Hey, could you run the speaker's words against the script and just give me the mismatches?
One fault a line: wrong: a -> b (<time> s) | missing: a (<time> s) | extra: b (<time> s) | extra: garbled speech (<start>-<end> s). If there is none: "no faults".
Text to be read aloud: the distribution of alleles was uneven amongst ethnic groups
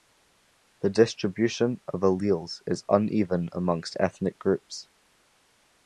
wrong: was -> is (2.6 s)